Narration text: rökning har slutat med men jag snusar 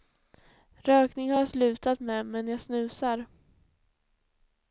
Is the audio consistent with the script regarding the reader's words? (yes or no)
no